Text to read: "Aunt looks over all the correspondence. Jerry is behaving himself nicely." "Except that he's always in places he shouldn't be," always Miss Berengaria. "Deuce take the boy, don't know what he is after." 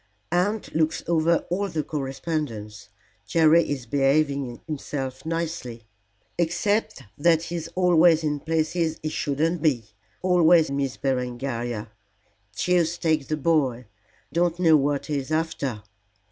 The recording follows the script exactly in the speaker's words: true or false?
true